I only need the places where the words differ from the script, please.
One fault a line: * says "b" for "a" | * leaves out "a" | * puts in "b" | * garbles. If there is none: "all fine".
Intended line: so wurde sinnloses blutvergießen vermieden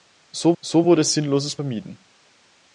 * puts in "so"
* leaves out "blutvergießen"